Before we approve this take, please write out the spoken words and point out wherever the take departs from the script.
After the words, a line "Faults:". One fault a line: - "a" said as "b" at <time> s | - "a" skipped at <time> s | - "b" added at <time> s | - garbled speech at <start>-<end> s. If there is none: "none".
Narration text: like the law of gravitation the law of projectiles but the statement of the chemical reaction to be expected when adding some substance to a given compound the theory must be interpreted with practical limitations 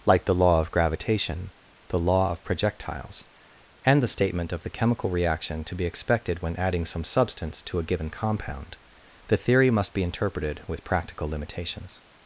like the law of gravitation the law of projectiles and the statement of the chemical reaction to be expected when adding some substance to a given compound the theory must be interpreted with practical limitations
Faults:
- "but" said as "and" at 3.9 s